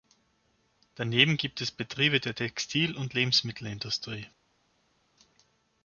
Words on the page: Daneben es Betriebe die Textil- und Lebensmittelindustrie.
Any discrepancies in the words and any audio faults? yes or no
yes